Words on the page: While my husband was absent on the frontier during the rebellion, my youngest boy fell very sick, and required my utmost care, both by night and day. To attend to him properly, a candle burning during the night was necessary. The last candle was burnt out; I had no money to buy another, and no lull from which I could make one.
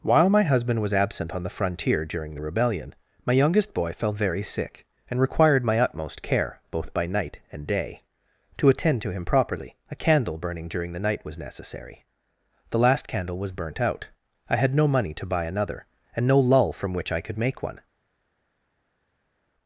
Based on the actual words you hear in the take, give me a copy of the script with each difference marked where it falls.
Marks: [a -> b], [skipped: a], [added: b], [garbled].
While my husband was absent on the frontier during the rebellion, my youngest boy fell very sick, and required my utmost care, both by night and day. To attend to him properly, a candle burning during the night was necessary. The last candle was burnt out; I had no money to buy another, and no lull from which I could make one.